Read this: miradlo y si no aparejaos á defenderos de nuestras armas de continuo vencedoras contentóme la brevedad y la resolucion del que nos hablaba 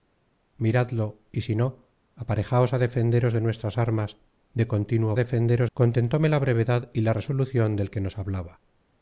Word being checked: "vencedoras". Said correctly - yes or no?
no